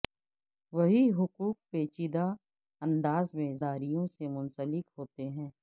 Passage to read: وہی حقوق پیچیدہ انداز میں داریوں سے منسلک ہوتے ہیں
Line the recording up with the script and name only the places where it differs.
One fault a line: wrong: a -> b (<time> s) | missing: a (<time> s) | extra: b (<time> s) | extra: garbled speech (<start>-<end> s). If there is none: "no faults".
no faults